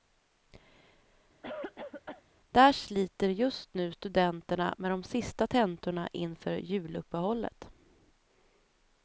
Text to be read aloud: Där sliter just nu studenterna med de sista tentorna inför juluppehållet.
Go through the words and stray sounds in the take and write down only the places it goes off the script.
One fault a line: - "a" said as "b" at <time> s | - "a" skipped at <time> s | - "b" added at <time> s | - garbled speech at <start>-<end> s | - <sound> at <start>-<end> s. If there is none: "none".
- cough at 1.4-2.2 s